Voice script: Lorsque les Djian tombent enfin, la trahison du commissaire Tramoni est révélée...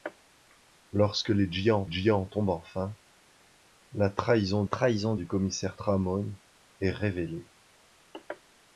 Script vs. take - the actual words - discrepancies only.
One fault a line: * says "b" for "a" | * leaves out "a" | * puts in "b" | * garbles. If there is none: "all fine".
* puts in "Djian"
* puts in "trahison"